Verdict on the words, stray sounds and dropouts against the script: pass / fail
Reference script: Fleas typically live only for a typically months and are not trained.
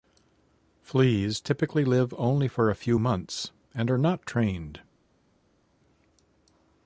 fail